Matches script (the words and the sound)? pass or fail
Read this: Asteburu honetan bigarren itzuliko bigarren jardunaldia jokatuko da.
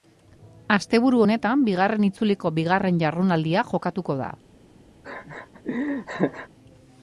fail